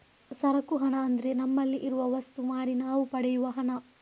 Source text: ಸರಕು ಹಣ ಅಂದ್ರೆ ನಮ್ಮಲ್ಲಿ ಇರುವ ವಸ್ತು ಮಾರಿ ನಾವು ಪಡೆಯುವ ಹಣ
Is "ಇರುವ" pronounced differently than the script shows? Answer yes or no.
no